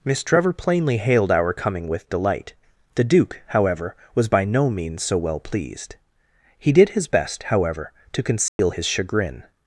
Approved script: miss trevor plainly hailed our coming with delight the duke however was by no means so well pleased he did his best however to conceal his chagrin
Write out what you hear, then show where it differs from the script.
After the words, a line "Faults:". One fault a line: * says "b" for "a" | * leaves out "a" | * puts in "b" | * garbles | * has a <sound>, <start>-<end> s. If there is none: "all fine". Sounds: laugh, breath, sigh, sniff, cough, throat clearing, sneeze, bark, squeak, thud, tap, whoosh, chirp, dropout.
miss trevor plainly hailed our coming with delight the duke however was by no means so well pleased he did his best however to conceal his chagrin
Faults:
* has a dropout, 8.5-8.6 s